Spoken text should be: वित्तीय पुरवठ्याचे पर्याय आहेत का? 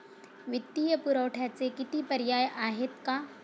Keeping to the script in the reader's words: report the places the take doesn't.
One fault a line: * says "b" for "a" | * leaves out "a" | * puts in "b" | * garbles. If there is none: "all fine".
* puts in "किती"